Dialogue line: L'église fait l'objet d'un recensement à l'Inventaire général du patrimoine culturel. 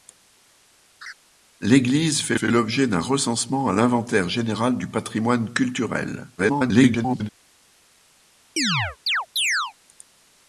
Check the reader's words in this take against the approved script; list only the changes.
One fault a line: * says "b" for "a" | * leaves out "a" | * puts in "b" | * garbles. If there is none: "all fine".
* puts in "fait"
* garbles